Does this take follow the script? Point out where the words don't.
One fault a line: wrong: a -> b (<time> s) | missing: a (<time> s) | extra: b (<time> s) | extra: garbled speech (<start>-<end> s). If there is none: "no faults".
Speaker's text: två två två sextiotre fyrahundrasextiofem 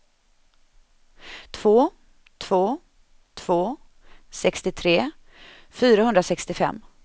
no faults